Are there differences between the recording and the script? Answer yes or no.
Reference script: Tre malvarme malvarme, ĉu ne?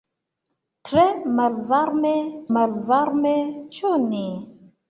no